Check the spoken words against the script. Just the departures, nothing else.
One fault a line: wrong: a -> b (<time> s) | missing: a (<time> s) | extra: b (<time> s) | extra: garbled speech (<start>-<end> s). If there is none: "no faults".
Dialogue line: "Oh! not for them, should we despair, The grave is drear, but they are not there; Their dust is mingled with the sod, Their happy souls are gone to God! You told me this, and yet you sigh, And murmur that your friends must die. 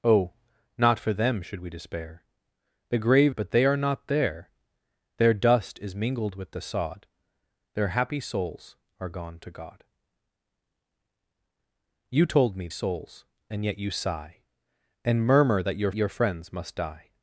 missing: is drear (3.4 s)
wrong: this -> souls (12.7 s)
extra: your (15.9 s)